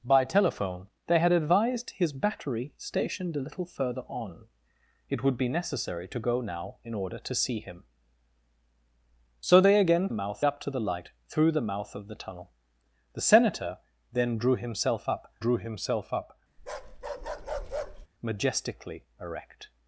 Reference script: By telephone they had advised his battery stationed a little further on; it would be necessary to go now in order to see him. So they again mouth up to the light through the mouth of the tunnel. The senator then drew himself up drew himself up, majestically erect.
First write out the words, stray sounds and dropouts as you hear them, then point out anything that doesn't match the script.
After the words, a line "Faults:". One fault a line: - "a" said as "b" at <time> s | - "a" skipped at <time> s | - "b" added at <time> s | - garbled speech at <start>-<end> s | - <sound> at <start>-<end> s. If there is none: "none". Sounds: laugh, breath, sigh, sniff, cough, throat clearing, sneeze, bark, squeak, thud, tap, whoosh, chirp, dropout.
By telephone they had advised his battery stationed a little further on; it would be necessary to go now in order to see him. So they again mouth up to the light through the mouth of the tunnel. The senator then drew himself up drew himself up, majestically erect.
Faults:
- bark at 16.6-18.1 s